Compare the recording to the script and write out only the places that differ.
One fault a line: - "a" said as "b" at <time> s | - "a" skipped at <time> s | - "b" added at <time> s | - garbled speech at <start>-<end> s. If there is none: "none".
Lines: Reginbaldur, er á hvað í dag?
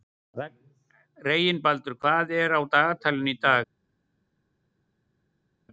- "hvað" added at 2.0 s
- "hvað" said as "dagatalinu" at 2.6 s